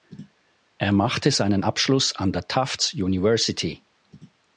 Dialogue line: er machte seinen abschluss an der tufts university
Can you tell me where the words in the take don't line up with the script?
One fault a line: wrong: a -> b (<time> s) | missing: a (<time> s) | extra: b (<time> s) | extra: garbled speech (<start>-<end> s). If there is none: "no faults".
no faults